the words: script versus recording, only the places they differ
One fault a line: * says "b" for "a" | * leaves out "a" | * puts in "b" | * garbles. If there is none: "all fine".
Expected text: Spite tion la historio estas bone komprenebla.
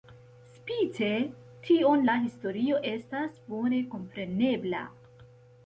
all fine